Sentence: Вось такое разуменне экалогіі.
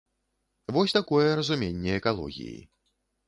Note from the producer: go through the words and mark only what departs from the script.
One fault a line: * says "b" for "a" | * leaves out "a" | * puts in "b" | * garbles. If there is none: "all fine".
all fine